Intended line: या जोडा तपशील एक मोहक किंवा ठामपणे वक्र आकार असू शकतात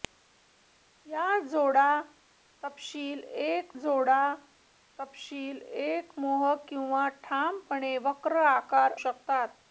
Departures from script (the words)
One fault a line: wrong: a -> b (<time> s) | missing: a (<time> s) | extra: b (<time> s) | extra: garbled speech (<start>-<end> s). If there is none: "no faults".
extra: जोडा तपशील एक (3.8 s)
missing: असू (8.9 s)